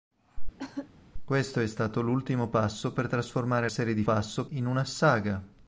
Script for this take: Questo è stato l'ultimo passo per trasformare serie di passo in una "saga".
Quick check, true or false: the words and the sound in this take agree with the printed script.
false